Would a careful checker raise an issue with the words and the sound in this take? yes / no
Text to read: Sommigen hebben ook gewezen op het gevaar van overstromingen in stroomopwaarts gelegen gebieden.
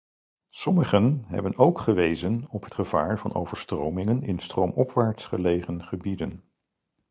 no